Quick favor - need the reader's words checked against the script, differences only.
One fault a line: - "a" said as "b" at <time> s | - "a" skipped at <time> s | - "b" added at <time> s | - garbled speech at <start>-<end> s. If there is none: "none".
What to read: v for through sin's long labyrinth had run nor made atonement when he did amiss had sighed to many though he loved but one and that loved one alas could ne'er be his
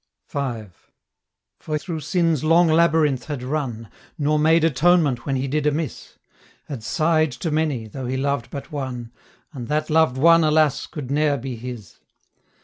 none